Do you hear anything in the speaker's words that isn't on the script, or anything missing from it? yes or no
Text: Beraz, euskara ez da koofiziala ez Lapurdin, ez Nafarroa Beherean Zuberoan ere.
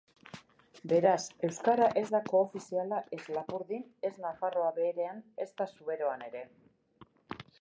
yes